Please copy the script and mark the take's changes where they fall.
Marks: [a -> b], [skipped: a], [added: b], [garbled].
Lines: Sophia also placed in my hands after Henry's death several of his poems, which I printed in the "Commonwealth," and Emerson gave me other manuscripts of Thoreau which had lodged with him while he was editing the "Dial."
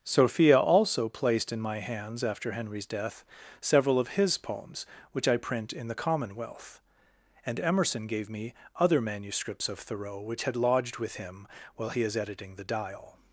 Sophia also placed in my hands after Henry's death several of his poems, which I [printed -> print] in the "Commonwealth," and Emerson gave me other manuscripts of Thoreau which had lodged with him while he [was -> is] editing the "Dial."